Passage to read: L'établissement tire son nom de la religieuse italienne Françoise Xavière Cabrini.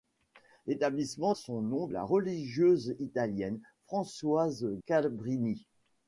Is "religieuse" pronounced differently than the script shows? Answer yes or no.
no